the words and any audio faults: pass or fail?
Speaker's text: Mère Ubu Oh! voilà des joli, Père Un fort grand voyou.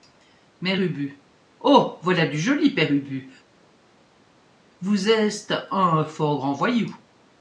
fail